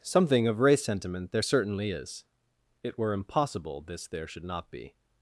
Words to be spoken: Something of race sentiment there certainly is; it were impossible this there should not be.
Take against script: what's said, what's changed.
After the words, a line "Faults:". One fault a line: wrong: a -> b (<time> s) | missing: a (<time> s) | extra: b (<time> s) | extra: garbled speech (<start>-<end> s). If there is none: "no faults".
Something of race sentiment there certainly is; it were impossible this there should not be.
Faults:
no faults